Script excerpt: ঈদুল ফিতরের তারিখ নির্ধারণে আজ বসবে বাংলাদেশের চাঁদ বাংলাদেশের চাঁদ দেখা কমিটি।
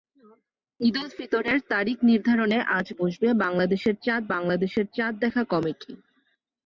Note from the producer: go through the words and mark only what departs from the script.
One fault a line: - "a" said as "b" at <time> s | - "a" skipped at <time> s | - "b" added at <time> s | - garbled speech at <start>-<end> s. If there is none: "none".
none